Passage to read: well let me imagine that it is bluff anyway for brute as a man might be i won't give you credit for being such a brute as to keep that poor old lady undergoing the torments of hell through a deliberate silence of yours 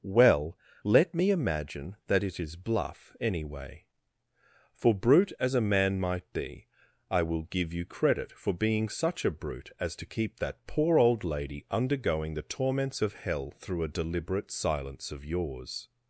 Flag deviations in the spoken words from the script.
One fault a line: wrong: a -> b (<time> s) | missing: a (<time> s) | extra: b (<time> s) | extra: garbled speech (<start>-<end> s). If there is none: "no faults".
wrong: won't -> will (7.2 s)